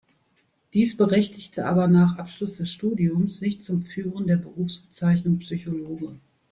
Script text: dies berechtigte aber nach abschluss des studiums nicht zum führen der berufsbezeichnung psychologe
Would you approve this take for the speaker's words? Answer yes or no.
yes